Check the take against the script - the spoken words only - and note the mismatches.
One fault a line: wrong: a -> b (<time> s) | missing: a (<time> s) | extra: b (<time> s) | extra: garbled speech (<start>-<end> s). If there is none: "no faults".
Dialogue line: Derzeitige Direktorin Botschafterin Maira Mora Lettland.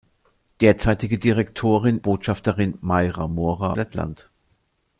no faults